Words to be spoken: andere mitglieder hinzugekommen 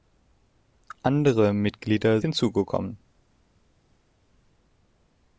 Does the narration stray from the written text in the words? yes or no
no